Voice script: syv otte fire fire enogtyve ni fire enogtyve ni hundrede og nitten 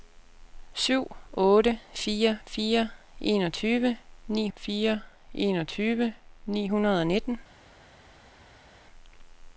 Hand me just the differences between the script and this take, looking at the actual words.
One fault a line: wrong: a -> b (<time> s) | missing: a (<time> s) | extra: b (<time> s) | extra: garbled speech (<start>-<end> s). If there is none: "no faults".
no faults